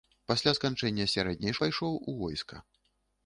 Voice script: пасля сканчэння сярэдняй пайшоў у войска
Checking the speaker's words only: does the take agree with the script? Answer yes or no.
yes